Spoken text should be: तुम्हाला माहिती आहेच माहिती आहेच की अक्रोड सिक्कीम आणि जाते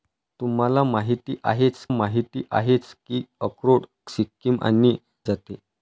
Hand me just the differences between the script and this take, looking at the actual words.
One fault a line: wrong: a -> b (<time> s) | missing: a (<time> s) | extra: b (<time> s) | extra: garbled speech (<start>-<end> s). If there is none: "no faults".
no faults